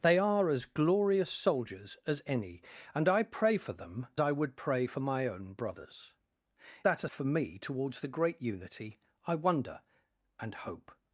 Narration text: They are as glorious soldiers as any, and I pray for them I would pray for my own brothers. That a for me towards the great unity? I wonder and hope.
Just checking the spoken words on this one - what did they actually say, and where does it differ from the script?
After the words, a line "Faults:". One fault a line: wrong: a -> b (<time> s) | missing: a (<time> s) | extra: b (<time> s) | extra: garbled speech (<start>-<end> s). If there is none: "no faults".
They are as glorious soldiers as any, and I pray for them I would pray for my own brothers. That a for me towards the great unity? I wonder and hope.
Faults:
no faults